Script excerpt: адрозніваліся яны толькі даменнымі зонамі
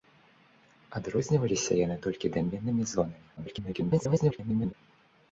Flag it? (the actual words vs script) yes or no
yes